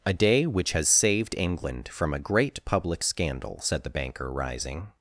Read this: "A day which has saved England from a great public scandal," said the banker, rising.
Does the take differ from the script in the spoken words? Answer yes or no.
no